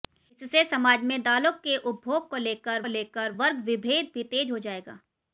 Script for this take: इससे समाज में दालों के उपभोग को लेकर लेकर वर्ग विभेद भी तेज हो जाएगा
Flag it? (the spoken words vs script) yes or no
no